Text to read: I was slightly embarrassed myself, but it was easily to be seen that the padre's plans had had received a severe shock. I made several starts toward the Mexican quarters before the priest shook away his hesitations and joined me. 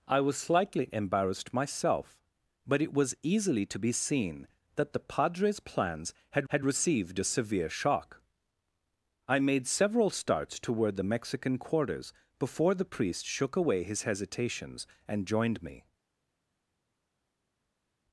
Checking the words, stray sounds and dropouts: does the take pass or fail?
pass